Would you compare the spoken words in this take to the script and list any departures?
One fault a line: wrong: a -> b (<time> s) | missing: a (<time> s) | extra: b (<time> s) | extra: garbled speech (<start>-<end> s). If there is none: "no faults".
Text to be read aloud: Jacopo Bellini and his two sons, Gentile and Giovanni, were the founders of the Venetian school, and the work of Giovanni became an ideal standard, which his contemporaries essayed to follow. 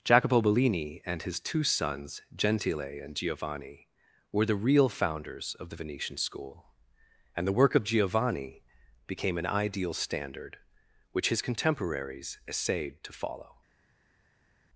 extra: real (4.5 s)